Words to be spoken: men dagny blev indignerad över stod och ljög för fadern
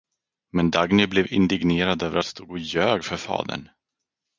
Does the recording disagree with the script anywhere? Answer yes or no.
no